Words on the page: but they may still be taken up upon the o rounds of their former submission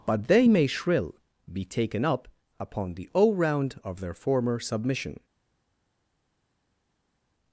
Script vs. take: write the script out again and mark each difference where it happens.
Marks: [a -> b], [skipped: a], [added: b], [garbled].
but they may [still -> shrill] be taken up upon the o [rounds -> round] of their former submission